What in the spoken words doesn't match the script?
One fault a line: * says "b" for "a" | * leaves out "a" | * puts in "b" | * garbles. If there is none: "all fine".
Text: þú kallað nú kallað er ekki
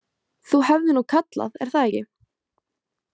* says "hefðir" for "kallað"
* puts in "það"